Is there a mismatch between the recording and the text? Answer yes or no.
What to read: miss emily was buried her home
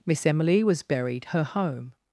no